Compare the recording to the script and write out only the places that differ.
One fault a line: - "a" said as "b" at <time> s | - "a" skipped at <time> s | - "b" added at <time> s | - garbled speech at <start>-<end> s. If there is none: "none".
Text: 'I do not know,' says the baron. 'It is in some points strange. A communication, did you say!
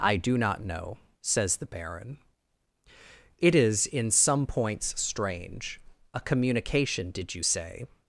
none